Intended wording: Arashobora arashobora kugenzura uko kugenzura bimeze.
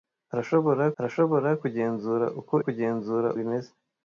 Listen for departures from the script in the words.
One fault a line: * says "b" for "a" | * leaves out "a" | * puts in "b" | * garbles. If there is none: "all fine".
all fine